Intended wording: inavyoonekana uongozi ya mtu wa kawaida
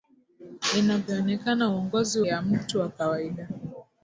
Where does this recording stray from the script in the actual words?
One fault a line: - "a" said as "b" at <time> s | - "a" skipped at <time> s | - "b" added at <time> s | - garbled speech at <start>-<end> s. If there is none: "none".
none